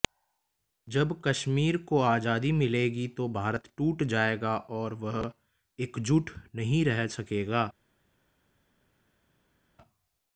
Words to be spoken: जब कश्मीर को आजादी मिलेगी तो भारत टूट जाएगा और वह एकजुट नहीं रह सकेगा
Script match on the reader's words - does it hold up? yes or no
yes